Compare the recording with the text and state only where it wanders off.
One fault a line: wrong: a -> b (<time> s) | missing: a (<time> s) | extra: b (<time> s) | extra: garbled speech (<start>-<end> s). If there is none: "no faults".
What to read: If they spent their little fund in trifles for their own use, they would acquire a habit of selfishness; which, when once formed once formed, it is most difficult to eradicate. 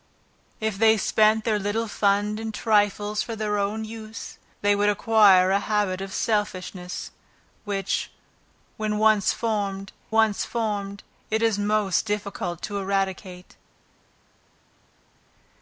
no faults